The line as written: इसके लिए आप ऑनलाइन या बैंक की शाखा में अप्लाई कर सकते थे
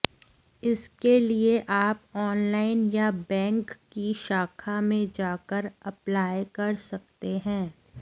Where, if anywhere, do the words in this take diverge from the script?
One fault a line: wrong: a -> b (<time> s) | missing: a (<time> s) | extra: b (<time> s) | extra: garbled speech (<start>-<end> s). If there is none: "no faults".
extra: जाकर (5.2 s)
wrong: थे -> हैं (7.4 s)